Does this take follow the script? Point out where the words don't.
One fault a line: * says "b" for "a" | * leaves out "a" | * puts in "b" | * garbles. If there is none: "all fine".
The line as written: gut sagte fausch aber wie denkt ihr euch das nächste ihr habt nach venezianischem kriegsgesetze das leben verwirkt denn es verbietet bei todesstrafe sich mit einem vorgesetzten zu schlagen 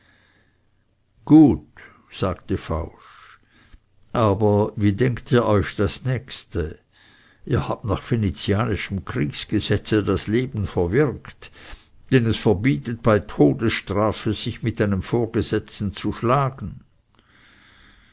all fine